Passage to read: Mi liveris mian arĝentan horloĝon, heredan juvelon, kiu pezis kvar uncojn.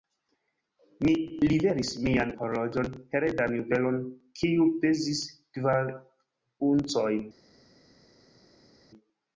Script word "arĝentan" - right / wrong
wrong